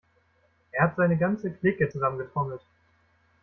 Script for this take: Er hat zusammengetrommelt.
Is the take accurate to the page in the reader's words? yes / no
no